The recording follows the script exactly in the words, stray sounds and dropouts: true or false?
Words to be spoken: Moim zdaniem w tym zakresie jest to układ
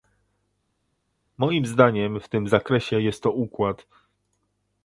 true